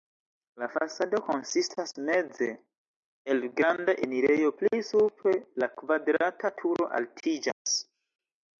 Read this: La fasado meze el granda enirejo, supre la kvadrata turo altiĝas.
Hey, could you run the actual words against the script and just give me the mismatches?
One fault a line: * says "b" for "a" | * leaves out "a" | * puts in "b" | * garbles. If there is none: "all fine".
* puts in "konsistas"
* puts in "pli"